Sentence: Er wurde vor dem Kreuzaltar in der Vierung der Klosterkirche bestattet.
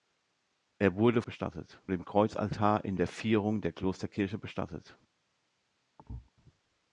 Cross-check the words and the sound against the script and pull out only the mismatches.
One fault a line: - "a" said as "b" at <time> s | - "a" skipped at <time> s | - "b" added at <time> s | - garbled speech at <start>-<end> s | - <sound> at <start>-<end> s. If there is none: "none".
- "vor" said as "bestattet" at 1.2 s
- thud at 6.0-6.3 s